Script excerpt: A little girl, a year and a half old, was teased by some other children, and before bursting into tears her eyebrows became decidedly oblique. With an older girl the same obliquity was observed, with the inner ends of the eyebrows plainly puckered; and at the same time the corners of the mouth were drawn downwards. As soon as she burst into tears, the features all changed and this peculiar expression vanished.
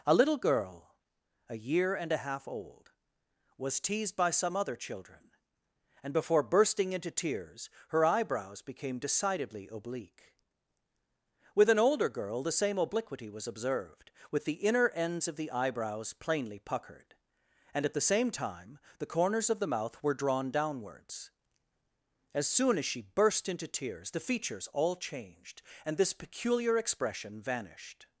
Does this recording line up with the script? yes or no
yes